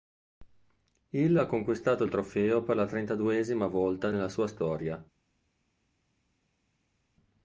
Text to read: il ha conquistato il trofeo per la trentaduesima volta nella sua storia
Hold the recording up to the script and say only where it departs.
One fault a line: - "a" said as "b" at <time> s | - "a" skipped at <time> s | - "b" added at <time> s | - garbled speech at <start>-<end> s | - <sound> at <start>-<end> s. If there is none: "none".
none